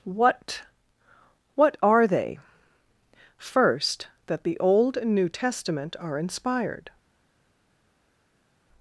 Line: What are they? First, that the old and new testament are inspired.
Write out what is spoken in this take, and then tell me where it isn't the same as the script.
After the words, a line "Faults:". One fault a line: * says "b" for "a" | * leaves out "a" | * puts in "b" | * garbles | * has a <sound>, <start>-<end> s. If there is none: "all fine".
What what are they? First, that the old and new testament are inspired.
Faults:
* puts in "what"